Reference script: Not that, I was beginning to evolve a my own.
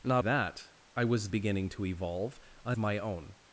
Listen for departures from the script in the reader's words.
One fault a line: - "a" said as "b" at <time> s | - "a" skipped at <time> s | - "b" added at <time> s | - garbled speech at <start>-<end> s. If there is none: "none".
none